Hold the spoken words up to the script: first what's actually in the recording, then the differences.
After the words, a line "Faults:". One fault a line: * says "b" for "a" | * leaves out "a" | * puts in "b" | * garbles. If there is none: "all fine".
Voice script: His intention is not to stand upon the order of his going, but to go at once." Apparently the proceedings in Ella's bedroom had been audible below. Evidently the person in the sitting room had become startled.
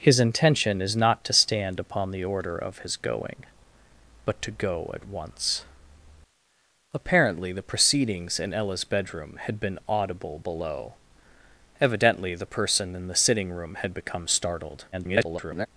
His intention is not to stand upon the order of his going, but to go at once." Apparently the proceedings in Ella's bedroom had been audible below. Evidently the person in the sitting room had become startled. [garbled]
Faults:
* garbles